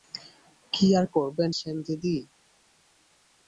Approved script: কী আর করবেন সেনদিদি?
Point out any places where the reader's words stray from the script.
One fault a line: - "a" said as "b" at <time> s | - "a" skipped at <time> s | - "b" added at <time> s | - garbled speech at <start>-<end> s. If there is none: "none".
none